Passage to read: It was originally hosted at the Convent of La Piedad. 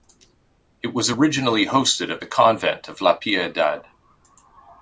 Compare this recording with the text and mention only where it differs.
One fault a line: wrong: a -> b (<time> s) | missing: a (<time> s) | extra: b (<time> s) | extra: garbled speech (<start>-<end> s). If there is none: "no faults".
no faults